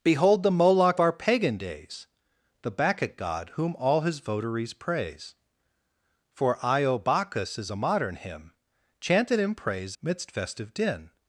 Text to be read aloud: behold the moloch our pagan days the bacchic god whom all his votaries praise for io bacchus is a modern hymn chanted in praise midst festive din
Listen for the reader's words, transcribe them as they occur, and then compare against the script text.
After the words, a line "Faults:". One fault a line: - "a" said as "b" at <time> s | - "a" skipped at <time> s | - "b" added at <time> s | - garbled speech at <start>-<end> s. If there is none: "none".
behold the moloch our pagan days the bacchic god whom all his votaries praise for io bacchus is a modern hymn chanted in praise midst festive din
Faults:
none